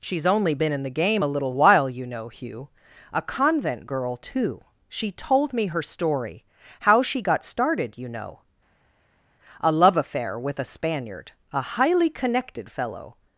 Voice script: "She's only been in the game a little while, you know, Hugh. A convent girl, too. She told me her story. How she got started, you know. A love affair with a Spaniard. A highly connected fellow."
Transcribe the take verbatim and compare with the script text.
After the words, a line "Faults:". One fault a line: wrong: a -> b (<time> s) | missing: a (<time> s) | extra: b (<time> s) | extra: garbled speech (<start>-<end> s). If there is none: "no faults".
"She's only been in the game a little while, you know, Hugh. A convent girl, too. She told me her story. How she got started, you know. A love affair with a Spaniard. A highly connected fellow."
Faults:
no faults